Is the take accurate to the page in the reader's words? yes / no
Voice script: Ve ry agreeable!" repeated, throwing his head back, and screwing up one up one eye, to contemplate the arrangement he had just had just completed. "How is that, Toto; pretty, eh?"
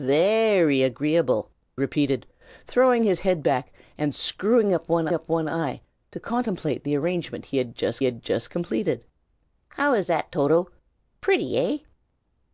yes